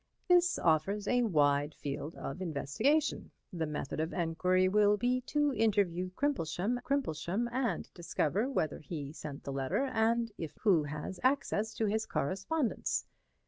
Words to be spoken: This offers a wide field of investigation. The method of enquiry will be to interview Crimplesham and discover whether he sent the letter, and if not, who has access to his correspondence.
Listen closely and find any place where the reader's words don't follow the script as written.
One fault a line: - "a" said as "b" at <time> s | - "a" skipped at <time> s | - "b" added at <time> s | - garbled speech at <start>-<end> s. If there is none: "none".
- "Crimplesham" added at 6.8 s
- "not" skipped at 10.6 s